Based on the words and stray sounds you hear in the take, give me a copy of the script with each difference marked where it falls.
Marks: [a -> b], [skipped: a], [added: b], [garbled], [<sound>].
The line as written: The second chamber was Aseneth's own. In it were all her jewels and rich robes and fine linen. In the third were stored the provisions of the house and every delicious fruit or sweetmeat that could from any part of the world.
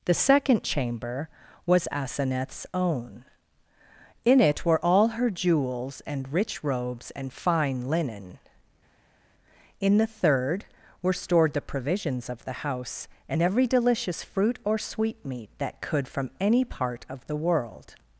The second chamber was Aseneth's own. In it were all her jewels and rich robes and fine linen. In the third were stored the provisions of the house and every delicious fruit or sweetmeat that could from any part of the world.